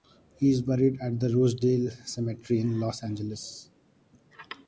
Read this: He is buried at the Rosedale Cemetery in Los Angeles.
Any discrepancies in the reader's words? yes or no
no